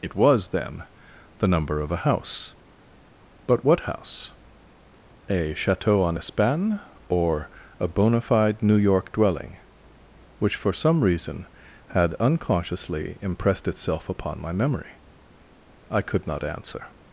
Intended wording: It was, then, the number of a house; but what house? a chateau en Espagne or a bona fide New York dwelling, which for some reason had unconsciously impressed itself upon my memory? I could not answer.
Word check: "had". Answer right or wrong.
right